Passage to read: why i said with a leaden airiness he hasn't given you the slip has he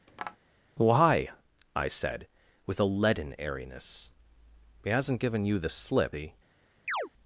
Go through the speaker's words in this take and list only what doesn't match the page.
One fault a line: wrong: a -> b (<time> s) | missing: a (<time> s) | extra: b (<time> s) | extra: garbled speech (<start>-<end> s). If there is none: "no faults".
missing: has (6.2 s)